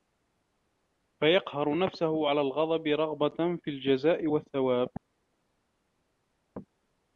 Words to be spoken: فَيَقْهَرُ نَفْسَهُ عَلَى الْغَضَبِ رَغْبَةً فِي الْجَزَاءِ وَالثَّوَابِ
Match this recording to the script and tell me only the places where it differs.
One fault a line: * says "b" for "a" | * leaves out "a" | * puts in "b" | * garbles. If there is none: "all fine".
all fine